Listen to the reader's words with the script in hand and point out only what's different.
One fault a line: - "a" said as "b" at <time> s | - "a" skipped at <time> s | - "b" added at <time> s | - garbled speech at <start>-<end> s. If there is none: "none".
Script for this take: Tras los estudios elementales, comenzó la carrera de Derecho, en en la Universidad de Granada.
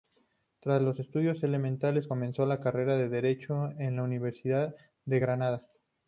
- "en" skipped at 4.0 s